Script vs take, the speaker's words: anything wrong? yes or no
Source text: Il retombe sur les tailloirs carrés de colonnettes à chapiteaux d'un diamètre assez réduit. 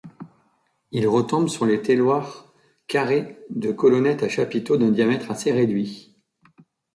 no